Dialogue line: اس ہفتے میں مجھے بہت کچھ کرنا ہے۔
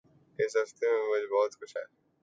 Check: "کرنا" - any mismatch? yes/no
yes